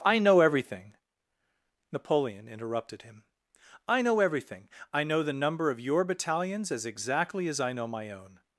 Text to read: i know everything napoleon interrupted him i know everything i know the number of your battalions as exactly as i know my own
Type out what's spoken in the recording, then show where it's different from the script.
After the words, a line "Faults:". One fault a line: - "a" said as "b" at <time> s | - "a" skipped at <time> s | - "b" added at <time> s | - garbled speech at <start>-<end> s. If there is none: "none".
i know everything napoleon interrupted him i know everything i know the number of your battalions as exactly as i know my own
Faults:
none